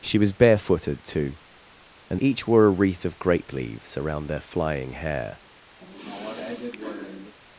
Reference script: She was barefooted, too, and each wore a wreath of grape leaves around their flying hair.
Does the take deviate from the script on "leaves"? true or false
false